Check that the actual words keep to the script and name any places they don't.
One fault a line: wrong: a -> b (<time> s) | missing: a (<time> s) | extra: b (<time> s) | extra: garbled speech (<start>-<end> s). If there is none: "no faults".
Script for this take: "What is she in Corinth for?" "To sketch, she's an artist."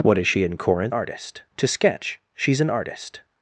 wrong: for -> artist (0.9 s)